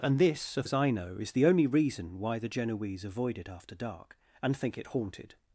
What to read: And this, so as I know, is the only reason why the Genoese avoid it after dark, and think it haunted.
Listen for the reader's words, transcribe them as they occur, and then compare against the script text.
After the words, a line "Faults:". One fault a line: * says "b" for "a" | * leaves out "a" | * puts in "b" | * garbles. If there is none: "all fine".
And this, so as I know, is the only reason why the Genoese avoid it after dark, and think it haunted.
Faults:
all fine